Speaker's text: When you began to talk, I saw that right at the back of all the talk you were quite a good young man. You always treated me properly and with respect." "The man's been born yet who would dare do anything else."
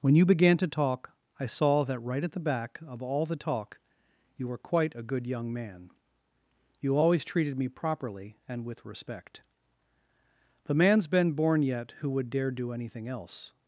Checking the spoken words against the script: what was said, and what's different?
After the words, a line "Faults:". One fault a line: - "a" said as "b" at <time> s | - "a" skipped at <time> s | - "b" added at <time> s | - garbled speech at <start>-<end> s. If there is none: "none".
When you began to talk, I saw that right at the back of all the talk you were quite a good young man. You always treated me properly and with respect." "The man's been born yet who would dare do anything else."
Faults:
none